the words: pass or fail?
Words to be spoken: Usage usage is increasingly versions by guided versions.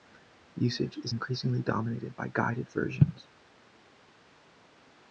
fail